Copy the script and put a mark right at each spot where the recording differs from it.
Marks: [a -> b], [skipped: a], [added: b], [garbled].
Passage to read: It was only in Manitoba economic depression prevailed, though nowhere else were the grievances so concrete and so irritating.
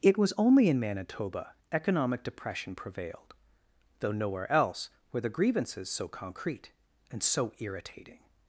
It was only in Manitoba economic depression prevailed, though nowhere else were the grievances so concrete and so irritating.